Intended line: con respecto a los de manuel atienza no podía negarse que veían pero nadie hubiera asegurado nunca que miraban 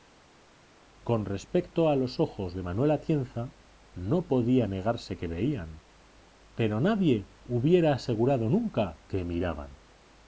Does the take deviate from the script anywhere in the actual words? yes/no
yes